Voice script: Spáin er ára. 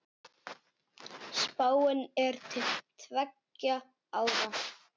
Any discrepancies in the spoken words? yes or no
yes